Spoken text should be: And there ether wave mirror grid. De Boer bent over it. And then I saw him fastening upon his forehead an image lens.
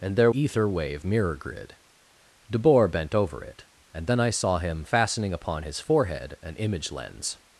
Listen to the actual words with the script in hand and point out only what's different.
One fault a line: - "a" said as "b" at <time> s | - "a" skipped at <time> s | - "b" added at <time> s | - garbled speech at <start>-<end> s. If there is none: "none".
none